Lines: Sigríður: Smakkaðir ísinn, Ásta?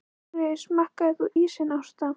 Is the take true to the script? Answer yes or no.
no